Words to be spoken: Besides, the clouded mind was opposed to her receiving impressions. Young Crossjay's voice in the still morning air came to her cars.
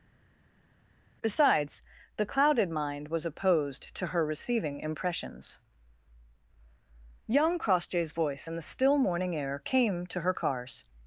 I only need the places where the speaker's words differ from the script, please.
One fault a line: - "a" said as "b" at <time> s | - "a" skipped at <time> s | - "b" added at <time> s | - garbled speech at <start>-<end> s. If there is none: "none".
none